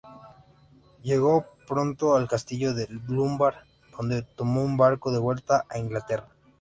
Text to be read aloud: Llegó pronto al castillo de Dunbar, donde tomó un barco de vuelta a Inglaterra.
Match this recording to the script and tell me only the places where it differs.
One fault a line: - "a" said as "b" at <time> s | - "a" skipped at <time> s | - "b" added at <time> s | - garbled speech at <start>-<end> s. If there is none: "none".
none